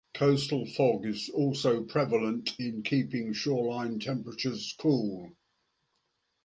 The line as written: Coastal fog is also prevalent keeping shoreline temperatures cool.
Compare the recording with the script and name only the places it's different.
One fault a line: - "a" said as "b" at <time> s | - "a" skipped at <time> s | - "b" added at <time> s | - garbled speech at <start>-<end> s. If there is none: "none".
- "in" added at 2.6 s